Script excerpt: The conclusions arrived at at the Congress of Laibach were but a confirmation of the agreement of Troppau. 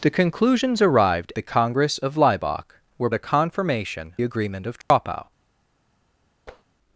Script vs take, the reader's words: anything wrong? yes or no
yes